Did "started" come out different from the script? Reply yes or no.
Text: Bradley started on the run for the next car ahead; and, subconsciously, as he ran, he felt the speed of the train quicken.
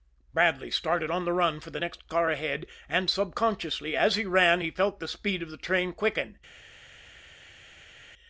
no